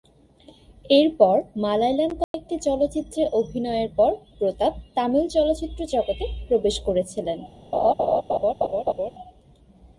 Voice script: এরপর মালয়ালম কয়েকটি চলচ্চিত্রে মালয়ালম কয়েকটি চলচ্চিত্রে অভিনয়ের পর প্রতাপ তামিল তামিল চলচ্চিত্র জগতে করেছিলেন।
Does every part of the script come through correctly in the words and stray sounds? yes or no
no